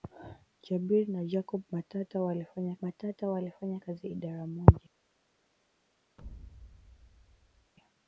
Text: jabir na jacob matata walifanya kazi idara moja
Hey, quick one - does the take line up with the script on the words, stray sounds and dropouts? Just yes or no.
no